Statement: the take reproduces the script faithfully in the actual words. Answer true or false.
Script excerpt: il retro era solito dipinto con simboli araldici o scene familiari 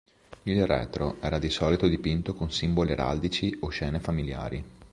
false